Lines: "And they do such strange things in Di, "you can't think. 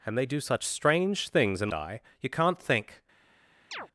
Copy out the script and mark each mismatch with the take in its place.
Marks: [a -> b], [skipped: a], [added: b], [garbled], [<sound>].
"And they do such strange things in Di, "you can't think. [chirp]